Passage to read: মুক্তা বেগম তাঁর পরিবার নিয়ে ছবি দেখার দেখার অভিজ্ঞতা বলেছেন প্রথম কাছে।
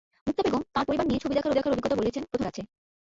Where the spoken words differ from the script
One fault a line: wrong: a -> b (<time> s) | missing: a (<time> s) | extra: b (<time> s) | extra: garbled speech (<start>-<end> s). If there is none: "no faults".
no faults